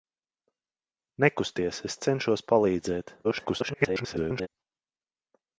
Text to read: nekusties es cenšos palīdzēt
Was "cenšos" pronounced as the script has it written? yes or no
yes